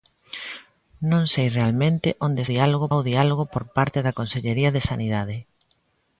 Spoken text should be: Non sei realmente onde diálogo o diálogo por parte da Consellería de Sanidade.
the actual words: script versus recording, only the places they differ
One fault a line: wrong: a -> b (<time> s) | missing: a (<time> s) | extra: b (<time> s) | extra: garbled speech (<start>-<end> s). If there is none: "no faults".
no faults